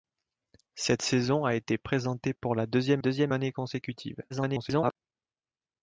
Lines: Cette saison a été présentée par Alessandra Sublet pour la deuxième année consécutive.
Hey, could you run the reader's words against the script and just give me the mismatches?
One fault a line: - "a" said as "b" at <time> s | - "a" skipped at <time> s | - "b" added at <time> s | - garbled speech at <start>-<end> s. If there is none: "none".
- "par Alessandra Sublet" skipped at 2.3 s
- "deuxième" added at 3.0 s
- garbled speech at 4.3-5.0 s